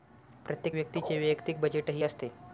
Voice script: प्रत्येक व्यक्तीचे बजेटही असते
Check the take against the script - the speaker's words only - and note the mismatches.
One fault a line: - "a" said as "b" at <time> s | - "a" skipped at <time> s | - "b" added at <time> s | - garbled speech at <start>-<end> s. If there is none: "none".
- "वैयक्तिक" added at 1.2 s